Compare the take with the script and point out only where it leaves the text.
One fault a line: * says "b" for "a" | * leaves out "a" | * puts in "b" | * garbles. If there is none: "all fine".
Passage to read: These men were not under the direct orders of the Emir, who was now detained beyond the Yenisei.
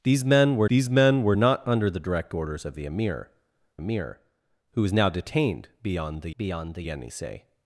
* puts in "these men were"
* puts in "Emir"
* puts in "beyond the"